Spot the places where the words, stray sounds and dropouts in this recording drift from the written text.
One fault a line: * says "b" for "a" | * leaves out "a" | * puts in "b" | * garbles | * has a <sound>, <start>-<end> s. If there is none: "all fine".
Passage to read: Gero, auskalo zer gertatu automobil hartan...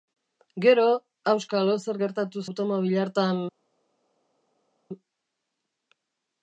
all fine